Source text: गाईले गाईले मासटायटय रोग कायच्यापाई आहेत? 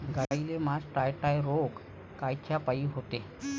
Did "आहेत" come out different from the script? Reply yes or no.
yes